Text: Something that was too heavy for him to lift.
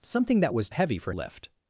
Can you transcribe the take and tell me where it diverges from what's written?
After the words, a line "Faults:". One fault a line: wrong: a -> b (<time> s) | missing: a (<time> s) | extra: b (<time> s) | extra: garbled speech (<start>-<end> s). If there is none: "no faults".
Something that was heavy for lift.
Faults:
missing: too (0.7 s)
missing: him to (1.1 s)